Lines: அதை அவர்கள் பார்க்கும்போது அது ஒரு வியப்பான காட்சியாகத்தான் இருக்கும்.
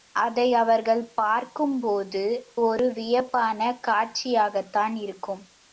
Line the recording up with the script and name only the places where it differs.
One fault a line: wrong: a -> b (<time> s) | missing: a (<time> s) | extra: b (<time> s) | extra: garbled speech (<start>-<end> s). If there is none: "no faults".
missing: அது (2.2 s)